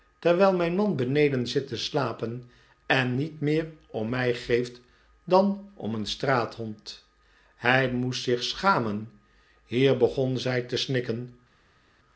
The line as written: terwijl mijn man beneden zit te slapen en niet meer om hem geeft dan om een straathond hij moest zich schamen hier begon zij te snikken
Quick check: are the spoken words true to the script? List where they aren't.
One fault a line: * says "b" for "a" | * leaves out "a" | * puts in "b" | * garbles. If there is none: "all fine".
* says "mij" for "hem"